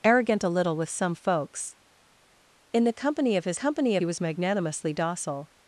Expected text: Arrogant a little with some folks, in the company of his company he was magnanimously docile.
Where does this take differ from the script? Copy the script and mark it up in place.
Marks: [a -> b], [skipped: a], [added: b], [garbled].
Arrogant a little with some folks, in the company of his company he was magnanimously docile.